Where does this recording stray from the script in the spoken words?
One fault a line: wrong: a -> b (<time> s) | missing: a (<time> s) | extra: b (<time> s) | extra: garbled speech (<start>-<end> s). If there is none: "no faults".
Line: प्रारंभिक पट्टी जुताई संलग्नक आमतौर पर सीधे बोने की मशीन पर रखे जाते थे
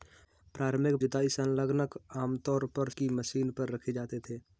missing: पट्टी (0.9 s)
missing: सीधे बोने (2.9 s)